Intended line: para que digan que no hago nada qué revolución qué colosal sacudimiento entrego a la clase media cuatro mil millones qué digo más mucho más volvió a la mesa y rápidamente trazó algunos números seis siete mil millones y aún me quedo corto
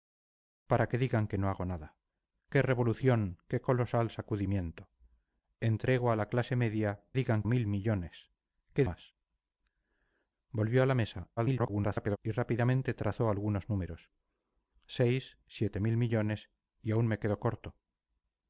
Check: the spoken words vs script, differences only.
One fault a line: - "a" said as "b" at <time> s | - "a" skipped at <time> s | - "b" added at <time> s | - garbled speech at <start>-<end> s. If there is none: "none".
- "cuatro" said as "digan" at 7.1 s
- "digo más mucho" skipped at 8.8 s
- garbled speech at 11.4-12.2 s